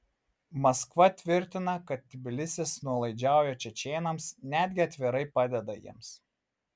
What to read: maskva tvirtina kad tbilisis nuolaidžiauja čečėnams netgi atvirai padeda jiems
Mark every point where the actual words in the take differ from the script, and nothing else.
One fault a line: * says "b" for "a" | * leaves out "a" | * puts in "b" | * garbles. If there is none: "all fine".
all fine